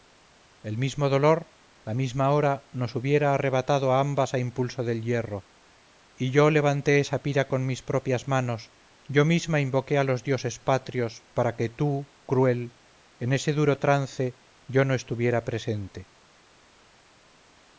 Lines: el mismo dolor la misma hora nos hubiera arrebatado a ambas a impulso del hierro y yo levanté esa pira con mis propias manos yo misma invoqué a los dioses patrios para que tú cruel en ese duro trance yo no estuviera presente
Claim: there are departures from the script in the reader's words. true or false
false